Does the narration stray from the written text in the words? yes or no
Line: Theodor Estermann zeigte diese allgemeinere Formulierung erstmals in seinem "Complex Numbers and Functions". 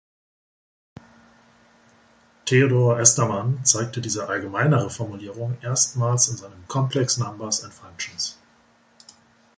no